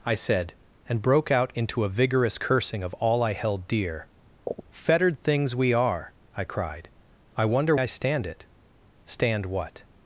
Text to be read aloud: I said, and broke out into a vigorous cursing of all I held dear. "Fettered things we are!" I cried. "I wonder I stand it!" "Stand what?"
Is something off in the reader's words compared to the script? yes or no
no